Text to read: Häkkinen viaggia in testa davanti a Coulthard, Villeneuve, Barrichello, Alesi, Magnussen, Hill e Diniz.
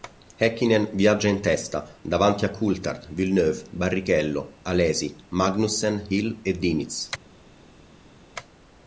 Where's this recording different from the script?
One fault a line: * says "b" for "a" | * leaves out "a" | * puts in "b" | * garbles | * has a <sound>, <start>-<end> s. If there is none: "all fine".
all fine